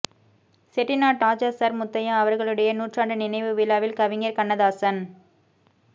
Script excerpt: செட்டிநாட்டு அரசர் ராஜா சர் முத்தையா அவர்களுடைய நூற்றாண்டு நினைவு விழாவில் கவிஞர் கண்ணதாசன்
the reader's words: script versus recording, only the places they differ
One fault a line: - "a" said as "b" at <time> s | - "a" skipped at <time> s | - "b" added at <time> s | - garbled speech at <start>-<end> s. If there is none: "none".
- "அரசர்" skipped at 1.2 s